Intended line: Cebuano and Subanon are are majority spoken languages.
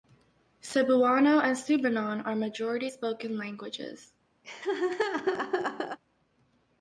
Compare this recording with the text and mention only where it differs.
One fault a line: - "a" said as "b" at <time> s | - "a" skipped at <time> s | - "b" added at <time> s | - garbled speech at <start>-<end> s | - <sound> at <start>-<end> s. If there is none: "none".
- "are" skipped at 2.3 s
- laugh at 4.4-6.0 s